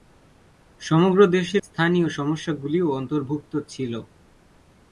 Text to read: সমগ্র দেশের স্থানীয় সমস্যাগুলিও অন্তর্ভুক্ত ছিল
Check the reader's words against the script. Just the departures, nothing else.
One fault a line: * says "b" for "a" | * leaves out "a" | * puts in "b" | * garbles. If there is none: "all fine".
all fine